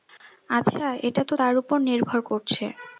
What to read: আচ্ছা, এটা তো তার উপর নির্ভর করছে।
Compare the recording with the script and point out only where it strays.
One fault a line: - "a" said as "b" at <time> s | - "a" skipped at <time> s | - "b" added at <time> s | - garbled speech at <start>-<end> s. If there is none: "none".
none